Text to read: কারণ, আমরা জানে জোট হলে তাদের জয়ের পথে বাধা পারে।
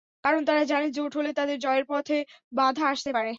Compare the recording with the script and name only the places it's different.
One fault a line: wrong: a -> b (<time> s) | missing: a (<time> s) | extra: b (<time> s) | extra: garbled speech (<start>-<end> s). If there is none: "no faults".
wrong: আমরা -> তারা (0.5 s)
extra: আসতে (2.9 s)